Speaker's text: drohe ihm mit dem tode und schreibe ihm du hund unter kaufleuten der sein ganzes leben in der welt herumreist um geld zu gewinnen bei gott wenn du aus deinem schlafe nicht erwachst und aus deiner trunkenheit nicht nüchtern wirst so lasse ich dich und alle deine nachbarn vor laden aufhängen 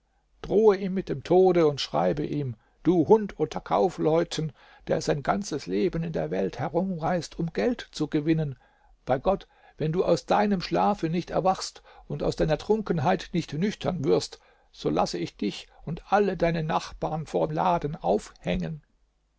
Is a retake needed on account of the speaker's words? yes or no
no